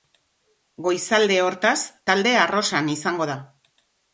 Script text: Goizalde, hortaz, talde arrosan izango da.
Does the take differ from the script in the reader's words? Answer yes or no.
no